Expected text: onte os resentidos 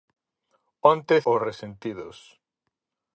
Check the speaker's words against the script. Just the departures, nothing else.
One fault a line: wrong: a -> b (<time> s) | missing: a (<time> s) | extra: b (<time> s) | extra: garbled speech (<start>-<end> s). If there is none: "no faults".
no faults